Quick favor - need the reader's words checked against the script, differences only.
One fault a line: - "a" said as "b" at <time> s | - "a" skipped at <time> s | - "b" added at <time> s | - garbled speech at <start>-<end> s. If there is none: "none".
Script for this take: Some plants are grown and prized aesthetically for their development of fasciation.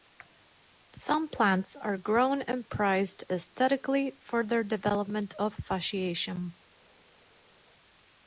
none